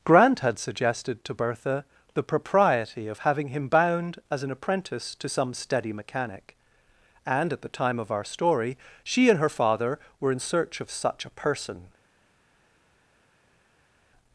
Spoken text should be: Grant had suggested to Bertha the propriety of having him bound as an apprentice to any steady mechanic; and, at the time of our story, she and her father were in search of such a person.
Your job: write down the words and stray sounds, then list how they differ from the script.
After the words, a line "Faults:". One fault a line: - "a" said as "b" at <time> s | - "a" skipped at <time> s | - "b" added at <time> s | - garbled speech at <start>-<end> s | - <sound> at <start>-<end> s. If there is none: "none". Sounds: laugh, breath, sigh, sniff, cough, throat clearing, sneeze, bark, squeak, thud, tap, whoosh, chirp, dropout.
Grant had suggested to Bertha the propriety of having him bound as an apprentice to some steady mechanic; and, at the time of our story, she and her father were in search of such a person.
Faults:
- "any" said as "some" at 5.3 s